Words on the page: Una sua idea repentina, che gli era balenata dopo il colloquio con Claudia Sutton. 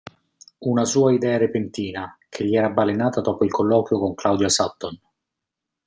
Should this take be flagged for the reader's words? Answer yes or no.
no